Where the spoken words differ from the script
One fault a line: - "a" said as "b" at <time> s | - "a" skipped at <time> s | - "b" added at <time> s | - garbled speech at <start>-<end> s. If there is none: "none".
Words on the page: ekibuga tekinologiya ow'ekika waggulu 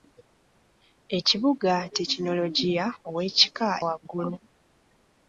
none